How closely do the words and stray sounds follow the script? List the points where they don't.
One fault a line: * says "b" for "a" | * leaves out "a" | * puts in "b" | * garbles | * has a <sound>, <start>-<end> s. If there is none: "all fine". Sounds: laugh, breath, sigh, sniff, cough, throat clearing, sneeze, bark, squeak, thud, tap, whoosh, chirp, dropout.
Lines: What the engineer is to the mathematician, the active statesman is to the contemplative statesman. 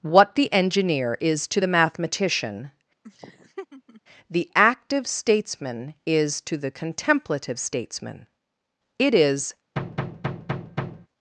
* has a laugh, 3.0-4.0 s
* puts in "It is"
* has a thud, 9.8-11.1 s